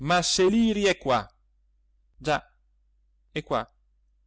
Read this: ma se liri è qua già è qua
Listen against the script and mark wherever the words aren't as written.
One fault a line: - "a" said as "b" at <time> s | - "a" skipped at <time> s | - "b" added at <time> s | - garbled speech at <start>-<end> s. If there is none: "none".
none